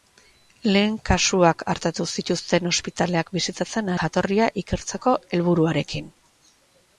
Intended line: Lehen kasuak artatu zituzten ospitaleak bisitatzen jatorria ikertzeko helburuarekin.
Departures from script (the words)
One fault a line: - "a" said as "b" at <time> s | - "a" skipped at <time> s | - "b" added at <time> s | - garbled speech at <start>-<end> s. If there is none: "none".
none